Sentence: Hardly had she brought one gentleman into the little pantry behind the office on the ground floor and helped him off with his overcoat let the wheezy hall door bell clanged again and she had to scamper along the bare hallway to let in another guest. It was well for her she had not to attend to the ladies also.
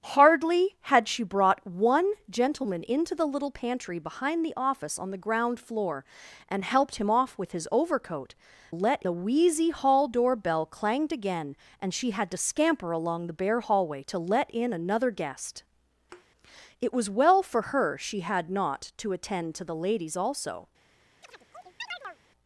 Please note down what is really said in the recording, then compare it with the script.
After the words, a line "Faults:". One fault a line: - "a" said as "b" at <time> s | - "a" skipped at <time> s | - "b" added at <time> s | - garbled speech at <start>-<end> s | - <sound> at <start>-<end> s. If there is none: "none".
Hardly had she brought one gentleman into the little pantry behind the office on the ground floor and helped him off with his overcoat let the wheezy hall door bell clanged again and she had to scamper along the bare hallway to let in another guest. It was well for her she had not to attend to the ladies also.
Faults:
- thud at 16.1-16.3 s
- chirp at 21.2-22.2 s